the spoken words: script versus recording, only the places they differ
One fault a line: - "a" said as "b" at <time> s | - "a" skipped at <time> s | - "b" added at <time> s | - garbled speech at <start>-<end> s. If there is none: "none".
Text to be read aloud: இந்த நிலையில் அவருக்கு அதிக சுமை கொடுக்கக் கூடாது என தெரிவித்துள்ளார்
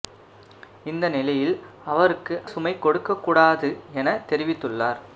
- "அதிக" skipped at 2.4 s